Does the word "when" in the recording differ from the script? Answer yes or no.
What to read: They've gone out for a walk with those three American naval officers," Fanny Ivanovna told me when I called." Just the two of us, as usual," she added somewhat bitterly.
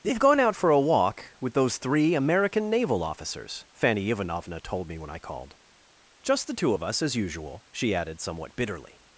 no